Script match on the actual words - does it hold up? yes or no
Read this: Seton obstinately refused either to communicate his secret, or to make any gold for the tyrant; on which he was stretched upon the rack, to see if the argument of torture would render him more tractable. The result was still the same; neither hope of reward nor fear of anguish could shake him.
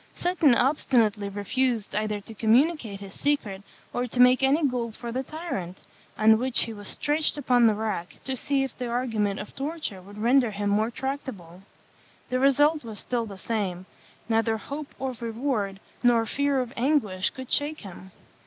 yes